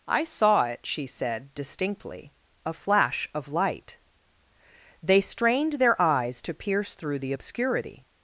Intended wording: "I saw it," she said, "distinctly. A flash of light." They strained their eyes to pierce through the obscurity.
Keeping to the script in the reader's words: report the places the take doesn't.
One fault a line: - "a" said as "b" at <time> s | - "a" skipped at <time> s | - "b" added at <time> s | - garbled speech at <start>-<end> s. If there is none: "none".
none